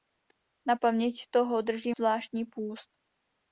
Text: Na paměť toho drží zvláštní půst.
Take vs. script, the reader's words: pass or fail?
pass